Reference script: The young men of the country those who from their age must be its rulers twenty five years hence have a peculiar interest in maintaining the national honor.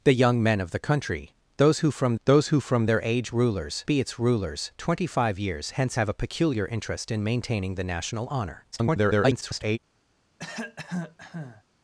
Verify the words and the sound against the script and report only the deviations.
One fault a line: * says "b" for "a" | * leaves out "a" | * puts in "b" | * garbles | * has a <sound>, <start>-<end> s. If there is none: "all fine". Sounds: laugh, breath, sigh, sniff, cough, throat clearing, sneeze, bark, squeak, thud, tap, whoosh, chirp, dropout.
* puts in "those who from"
* says "rulers" for "must"
* garbles
* has a cough, 10.4-11.6 s